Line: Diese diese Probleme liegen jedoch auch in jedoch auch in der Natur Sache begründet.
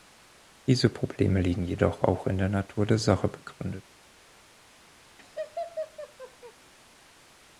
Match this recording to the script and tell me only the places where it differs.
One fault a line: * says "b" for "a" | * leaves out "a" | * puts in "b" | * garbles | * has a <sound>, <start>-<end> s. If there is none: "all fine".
* leaves out "diese"
* says "der Natur" for "jedoch auch in"
* leaves out "Natur"
* has a laugh, 5.2-6.5 s